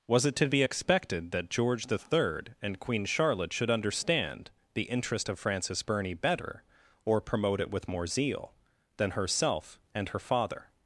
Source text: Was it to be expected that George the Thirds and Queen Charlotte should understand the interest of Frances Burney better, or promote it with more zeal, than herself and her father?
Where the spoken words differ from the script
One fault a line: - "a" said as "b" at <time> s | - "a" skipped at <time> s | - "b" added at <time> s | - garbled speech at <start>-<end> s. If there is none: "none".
- "Thirds" said as "Third" at 2.0 s